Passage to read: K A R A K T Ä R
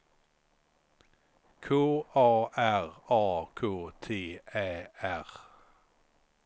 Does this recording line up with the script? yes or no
yes